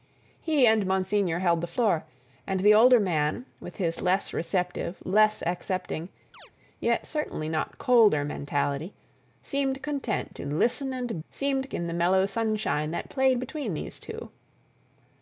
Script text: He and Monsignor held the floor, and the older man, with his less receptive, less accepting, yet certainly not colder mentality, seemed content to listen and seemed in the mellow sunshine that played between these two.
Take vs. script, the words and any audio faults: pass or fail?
fail